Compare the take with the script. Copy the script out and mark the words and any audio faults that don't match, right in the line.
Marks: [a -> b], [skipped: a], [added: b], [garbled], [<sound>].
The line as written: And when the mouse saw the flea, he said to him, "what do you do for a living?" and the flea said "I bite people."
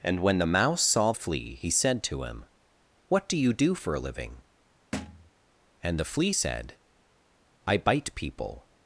And when the mouse saw [skipped: the] flea, he said to him, "what do you do for a living?" [thud] and the flea said "I bite people."